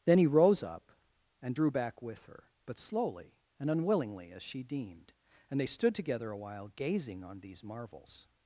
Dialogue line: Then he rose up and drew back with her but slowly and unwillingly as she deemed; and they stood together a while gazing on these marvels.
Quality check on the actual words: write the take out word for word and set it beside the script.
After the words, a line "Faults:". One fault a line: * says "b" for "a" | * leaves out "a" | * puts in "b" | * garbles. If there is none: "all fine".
Then he rose up and drew back with her but slowly and unwillingly as she deemed; and they stood together a while gazing on these marvels.
Faults:
all fine